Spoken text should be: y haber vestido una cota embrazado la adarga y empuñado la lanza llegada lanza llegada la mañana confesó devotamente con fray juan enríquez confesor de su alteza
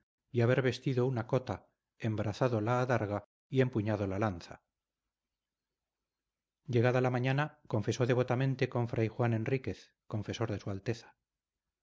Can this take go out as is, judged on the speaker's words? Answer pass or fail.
fail